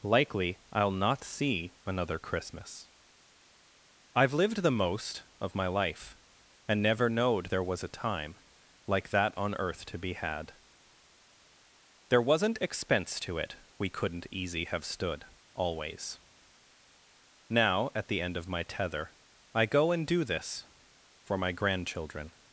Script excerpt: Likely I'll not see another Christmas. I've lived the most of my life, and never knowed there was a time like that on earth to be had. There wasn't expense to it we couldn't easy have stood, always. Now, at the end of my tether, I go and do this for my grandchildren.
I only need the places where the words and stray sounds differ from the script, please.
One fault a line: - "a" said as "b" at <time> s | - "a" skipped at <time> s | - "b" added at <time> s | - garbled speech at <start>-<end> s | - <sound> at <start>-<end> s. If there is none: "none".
none